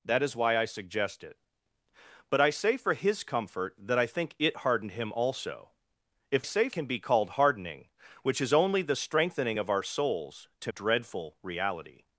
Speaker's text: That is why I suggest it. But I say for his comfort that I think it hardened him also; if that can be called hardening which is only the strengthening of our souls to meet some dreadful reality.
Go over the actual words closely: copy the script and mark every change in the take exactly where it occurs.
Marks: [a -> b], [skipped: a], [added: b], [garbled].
That is why I suggest it. But I say for his comfort that I think it hardened him also; if [that -> say] can be called hardening which is only the strengthening of our souls to [skipped: meet some] dreadful reality.